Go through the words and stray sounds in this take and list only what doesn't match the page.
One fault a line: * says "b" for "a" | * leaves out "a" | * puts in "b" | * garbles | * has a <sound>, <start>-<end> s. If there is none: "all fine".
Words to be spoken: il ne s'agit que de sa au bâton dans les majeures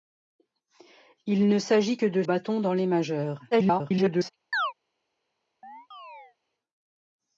* leaves out "sa au"
* garbles
* has a chirp, 4.5-4.7 s
* has a chirp, 5.6-6.4 s